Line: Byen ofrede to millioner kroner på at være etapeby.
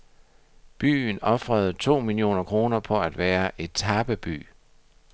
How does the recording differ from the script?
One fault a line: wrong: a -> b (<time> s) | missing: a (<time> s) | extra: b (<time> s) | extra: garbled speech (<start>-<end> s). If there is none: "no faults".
no faults